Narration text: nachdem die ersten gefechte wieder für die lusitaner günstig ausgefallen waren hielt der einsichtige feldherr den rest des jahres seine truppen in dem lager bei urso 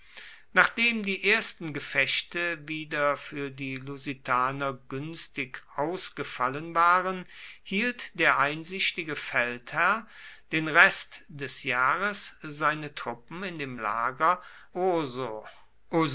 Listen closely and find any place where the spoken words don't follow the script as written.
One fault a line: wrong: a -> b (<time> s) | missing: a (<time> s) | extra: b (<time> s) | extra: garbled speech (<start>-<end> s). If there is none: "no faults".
missing: bei (14.4 s)